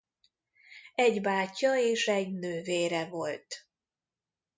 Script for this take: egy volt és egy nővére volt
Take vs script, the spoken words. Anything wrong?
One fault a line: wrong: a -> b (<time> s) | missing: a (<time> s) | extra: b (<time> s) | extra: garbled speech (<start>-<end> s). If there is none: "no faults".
wrong: volt -> bátyja (1.2 s)